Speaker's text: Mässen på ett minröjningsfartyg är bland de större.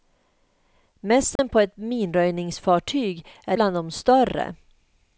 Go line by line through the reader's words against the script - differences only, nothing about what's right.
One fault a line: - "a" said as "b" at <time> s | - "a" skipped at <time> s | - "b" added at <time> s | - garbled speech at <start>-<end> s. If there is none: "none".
none